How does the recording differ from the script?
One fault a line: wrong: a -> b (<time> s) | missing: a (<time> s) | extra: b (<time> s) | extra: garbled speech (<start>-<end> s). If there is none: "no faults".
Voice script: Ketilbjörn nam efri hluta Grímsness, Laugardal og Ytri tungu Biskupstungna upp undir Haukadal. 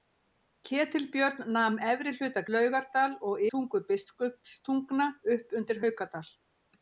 missing: Grímsness (2.4 s)
missing: Ytri (3.4 s)